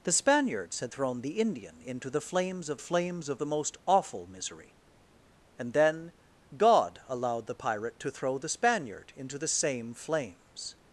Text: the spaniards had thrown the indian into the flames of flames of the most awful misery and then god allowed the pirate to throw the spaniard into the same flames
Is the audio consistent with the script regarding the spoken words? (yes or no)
yes